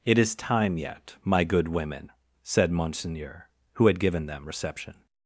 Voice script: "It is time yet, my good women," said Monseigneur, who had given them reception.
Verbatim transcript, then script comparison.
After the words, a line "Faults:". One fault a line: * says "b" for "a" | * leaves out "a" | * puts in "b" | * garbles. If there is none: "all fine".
"It is time yet, my good women," said Monseigneur, who had given them reception.
Faults:
all fine